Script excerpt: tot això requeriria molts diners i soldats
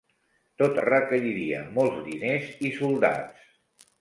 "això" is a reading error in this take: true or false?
true